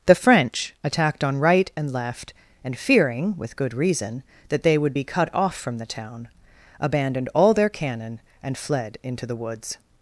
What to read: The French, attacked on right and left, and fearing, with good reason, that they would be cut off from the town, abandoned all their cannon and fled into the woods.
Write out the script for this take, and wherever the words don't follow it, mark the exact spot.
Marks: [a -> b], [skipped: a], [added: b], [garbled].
The French, attacked on right and left, and fearing, with good reason, that they would be cut off from the town, abandoned all their cannon and fled into the woods.